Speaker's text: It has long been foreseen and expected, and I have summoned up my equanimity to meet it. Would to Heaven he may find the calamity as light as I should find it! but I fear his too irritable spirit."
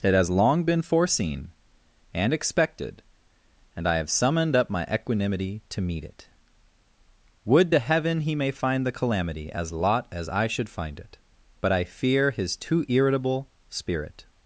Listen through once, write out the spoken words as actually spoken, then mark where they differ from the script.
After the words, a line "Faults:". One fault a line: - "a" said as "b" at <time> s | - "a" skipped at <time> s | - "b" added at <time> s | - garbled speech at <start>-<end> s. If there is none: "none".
It has long been foreseen and expected, and I have summoned up my equanimity to meet it. Would to Heaven he may find the calamity as lot as I should find it! but I fear his too irritable spirit."
Faults:
- "light" said as "lot" at 9.7 s